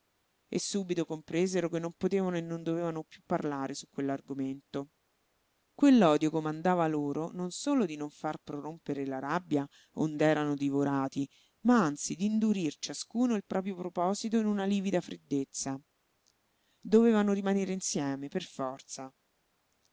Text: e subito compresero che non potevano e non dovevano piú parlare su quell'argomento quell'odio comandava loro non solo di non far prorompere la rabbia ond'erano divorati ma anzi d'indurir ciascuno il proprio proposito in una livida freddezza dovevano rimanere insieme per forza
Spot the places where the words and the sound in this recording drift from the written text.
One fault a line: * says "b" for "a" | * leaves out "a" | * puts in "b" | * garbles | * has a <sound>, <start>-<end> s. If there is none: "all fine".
all fine